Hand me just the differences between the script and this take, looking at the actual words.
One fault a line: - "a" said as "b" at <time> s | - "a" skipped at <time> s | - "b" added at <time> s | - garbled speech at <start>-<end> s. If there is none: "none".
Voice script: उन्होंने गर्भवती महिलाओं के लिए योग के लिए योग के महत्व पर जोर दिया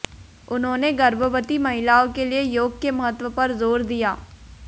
- "लिए योग के" skipped at 2.9 s